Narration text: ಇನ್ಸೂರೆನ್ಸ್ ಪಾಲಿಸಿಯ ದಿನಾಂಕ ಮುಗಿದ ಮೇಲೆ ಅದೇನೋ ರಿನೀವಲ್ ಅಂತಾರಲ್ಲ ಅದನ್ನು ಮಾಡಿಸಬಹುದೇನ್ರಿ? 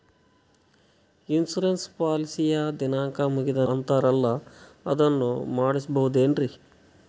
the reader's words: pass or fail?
fail